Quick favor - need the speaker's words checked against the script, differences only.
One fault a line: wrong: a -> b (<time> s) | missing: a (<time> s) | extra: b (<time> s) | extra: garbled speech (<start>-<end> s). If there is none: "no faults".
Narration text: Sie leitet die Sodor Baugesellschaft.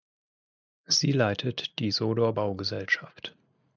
no faults